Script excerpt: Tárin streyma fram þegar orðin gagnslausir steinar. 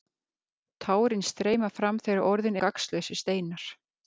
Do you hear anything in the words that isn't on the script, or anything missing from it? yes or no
no